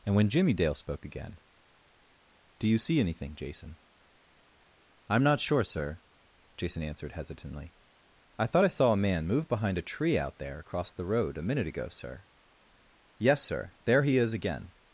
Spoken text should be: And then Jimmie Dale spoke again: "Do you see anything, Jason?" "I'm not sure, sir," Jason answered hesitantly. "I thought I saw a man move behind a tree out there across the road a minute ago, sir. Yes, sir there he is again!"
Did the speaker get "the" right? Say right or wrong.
right